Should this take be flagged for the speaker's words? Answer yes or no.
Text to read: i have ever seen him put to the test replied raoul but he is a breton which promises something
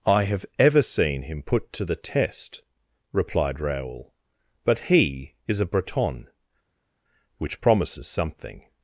no